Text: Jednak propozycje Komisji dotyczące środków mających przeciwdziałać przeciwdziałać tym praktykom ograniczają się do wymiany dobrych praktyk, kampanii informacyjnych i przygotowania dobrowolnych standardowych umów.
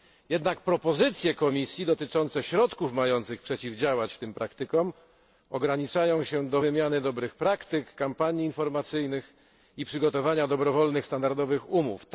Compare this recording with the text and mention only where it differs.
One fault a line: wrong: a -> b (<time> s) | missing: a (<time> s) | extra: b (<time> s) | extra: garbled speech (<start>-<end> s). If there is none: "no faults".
missing: przeciwdziałać (4.2 s)